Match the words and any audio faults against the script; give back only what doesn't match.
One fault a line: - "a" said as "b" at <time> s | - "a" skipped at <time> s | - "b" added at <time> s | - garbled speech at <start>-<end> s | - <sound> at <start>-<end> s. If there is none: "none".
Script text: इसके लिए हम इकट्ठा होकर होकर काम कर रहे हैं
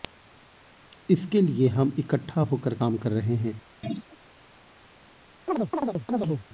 - "होकर" skipped at 2.8 s
- throat clearing at 3.8-4.2 s
- chirp at 5.5-6.5 s